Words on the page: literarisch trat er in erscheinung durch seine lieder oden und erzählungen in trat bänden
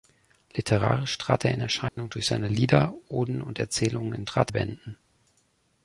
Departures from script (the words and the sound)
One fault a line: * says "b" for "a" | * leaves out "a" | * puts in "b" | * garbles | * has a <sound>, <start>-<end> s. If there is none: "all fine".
* has a dropout, 1.9-2.0 s